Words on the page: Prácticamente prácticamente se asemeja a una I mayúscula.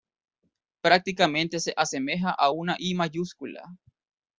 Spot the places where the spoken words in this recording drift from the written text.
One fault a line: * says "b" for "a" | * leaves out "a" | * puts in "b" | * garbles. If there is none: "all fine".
* leaves out "prácticamente"